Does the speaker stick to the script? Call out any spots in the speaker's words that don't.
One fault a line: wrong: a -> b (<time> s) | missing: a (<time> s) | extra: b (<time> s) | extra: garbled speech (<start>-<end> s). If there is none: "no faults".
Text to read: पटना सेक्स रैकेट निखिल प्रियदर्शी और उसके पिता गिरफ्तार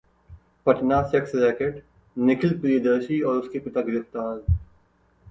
no faults